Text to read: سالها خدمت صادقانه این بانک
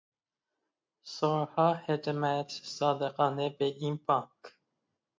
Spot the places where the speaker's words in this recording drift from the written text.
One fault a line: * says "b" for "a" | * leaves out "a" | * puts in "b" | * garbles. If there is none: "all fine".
* puts in "به"